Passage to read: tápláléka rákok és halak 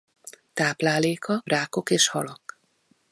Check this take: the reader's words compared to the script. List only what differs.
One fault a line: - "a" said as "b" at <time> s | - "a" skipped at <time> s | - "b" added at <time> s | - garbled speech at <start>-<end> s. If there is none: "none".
none